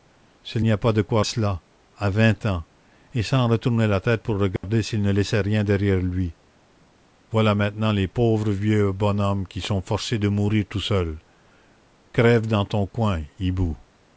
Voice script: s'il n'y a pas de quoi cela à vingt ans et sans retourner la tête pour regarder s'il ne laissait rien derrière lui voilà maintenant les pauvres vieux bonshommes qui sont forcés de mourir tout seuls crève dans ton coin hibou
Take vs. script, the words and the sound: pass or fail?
fail